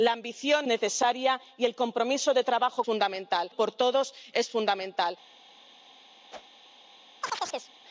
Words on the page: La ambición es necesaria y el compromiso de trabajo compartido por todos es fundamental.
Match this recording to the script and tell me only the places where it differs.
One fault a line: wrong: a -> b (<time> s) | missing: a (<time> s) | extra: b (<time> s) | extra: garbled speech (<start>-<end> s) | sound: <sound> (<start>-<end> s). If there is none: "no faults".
missing: es (0.7 s)
wrong: compartido -> fundamental (2.8 s)
sound: whoosh (6.3-6.6 s)
sound: chirp (7.2-7.7 s)